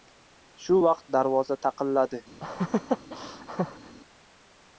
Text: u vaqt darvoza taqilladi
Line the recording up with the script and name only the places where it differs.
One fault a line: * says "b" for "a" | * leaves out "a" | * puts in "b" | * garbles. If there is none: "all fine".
* says "shu" for "u"